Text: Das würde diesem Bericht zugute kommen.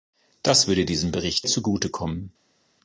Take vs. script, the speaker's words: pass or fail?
pass